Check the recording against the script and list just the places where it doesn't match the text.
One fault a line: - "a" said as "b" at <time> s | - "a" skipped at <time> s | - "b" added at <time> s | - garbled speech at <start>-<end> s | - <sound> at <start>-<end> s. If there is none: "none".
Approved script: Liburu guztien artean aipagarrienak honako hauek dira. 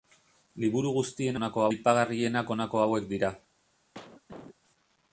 - "artean" said as "honako" at 1.4 s
- cough at 3.9-4.6 s